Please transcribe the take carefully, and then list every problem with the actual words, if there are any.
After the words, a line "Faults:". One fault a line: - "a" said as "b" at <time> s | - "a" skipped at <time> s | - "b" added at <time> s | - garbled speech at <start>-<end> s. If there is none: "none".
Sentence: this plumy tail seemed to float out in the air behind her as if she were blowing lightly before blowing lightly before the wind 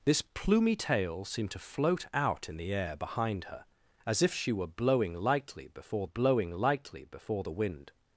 this plumy tail seemed to float out in the air behind her as if she were blowing lightly before blowing lightly before the wind
Faults:
none